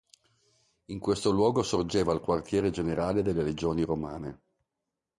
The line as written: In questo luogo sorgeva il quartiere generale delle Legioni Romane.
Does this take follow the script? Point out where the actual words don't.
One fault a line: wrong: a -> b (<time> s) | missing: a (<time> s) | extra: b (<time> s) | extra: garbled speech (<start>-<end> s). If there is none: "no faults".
no faults